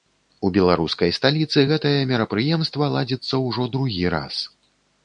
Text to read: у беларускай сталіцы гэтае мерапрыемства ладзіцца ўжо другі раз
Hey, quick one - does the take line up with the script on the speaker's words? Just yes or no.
yes